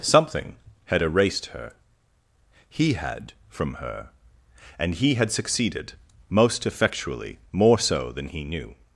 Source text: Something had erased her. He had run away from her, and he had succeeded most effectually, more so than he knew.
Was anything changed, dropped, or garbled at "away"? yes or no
yes